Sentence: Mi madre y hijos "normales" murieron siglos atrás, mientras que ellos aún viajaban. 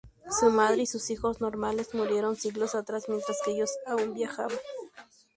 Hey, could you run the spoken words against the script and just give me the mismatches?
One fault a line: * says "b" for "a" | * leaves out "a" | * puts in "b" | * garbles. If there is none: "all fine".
* says "Su" for "Mi"
* puts in "sus"